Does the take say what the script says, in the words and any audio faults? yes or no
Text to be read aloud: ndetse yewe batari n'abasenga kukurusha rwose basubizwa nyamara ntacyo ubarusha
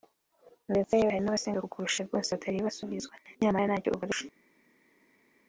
no